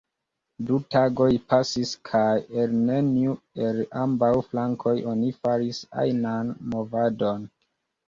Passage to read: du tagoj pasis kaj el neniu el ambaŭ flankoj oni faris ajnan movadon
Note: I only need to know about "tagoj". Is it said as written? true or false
true